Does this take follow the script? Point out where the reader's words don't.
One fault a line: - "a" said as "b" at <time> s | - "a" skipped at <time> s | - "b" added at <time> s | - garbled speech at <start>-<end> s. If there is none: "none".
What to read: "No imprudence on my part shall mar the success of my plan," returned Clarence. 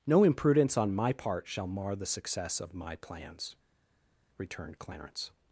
- "plan" said as "plans" at 3.0 s